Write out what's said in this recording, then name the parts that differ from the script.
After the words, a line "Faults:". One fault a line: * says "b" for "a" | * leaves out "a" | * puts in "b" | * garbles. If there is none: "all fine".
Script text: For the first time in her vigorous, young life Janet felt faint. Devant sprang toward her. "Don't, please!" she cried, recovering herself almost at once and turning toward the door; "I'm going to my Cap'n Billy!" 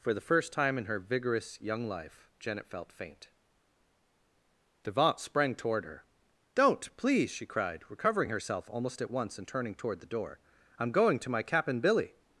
For the first time in her vigorous, young life Janet felt faint. Devant sprang toward her. "Don't, please!" she cried, recovering herself almost at once and turning toward the door; "I'm going to my Cap'n Billy!"
Faults:
all fine